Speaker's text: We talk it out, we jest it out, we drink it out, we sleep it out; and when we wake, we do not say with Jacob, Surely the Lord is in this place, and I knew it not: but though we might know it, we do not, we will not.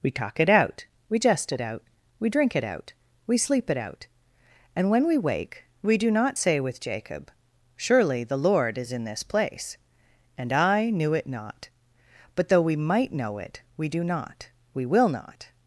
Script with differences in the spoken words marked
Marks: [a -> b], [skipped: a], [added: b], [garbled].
We talk it out, we jest it out, we drink it out, we sleep it out; and when we wake, we do not say with Jacob, Surely the Lord is in this place, and I knew it not: but though we might know it, we do not, we will not.